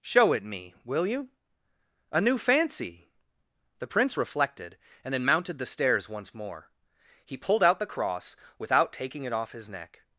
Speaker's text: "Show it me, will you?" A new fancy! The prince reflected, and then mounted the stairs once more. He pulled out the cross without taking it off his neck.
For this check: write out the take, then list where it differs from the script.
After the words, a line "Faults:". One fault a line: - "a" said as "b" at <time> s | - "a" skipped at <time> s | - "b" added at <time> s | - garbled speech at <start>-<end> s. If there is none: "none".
"Show it me, will you?" A new fancy! The prince reflected, and then mounted the stairs once more. He pulled out the cross without taking it off his neck.
Faults:
none